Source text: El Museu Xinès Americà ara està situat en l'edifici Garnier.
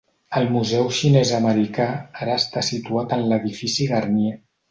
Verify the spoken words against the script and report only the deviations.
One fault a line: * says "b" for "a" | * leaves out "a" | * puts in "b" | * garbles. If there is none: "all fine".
all fine